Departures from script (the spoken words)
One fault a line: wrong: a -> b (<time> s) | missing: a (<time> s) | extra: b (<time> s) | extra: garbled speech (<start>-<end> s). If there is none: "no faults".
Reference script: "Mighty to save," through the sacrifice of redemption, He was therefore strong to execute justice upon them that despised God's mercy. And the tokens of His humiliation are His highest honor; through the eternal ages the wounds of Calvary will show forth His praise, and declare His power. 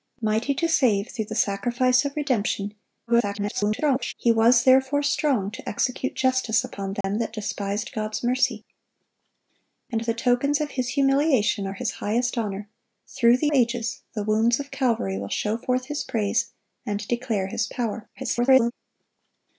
extra: garbled speech (3.1-4.1 s)
missing: eternal (13.5 s)
extra: garbled speech (18.2-18.7 s)